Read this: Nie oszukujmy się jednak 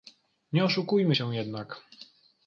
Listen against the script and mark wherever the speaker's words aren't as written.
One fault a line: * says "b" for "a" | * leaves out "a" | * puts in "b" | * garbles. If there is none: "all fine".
all fine